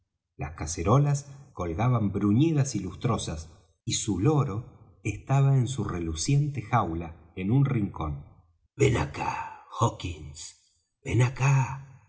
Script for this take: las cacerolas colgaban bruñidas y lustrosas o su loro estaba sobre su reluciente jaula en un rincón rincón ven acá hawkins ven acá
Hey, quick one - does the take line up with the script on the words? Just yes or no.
no